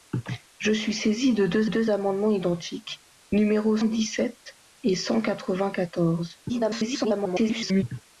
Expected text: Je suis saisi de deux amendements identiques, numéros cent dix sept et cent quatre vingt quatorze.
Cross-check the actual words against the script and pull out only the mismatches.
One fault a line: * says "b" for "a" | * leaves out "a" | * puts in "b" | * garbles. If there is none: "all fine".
* puts in "deux"
* leaves out "cent"
* garbles